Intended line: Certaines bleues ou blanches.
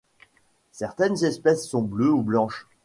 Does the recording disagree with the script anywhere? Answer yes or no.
yes